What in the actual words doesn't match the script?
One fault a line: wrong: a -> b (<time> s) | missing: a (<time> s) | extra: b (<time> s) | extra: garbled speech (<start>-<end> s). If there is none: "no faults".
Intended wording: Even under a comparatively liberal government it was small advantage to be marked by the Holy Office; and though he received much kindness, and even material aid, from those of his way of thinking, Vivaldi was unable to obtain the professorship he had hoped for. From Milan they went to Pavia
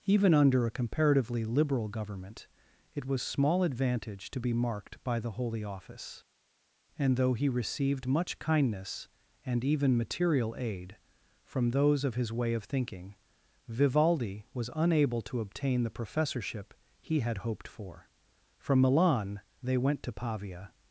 no faults